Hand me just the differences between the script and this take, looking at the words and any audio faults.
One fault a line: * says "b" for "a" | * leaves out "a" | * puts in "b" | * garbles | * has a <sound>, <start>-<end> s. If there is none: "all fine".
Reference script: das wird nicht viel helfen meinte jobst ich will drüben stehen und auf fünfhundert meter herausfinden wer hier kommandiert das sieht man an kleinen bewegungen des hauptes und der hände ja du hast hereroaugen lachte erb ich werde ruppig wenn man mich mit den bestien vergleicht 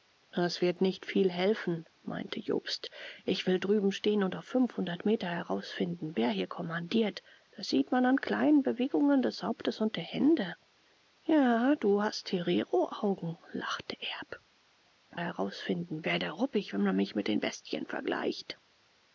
* says "herausfinden" for "ich"